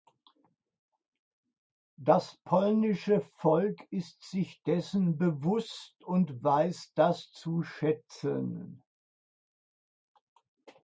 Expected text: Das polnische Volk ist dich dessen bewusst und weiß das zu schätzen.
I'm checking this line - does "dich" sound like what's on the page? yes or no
no